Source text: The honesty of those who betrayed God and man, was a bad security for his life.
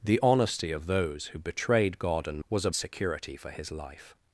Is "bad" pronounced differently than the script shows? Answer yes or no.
yes